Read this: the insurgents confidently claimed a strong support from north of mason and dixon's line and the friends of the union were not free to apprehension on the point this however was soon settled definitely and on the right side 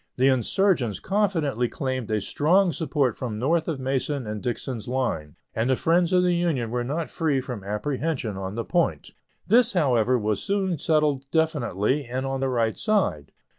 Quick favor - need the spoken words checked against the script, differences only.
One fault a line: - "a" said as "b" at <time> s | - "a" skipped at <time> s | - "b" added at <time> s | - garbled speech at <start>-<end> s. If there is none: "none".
- "to" said as "from" at 7.4 s